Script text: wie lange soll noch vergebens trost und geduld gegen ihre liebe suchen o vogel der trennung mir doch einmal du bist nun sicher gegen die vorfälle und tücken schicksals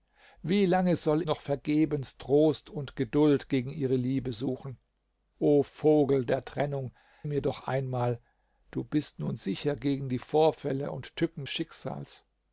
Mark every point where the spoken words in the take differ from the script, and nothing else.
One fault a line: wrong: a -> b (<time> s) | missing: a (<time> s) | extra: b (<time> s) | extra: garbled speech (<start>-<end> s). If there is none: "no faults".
no faults